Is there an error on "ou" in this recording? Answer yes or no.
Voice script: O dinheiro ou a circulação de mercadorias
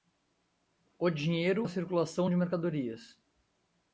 yes